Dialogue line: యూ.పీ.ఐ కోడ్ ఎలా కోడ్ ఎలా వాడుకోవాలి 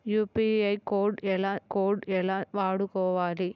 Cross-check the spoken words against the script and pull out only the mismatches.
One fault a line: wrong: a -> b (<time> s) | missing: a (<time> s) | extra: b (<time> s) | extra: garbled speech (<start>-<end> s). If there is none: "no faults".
no faults